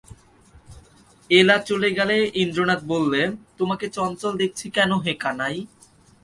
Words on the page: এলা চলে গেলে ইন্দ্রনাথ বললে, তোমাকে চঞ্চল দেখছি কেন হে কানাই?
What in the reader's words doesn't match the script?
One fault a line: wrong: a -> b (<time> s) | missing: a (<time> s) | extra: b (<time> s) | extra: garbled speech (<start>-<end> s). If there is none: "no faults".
no faults